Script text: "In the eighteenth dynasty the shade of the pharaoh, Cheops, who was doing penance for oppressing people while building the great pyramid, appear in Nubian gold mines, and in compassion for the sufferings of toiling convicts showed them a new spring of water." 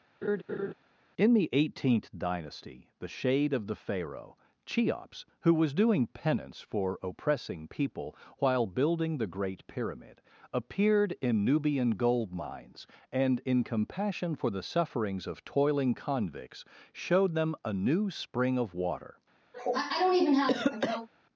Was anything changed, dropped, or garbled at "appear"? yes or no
yes